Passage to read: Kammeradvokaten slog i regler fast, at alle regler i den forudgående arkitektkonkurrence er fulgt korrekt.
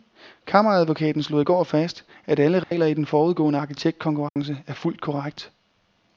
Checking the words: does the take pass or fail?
fail